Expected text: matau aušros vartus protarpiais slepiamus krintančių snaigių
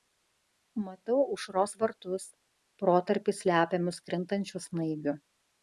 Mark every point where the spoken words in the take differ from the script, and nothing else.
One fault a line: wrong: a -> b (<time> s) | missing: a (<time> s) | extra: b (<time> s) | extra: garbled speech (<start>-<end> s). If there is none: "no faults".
no faults